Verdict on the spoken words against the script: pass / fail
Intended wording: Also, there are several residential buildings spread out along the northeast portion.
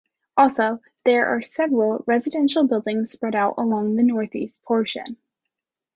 pass